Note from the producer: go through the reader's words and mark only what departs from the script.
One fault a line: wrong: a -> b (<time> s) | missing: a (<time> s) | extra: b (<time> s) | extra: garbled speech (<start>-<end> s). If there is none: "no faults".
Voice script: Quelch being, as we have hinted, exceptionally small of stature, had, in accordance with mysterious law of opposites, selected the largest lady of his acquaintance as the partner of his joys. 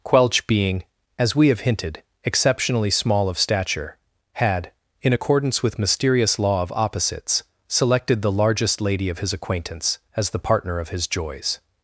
no faults